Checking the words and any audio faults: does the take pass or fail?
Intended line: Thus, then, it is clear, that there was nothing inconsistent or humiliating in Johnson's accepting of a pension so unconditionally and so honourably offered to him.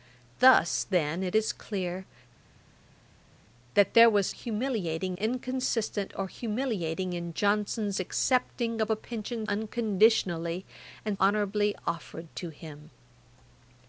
fail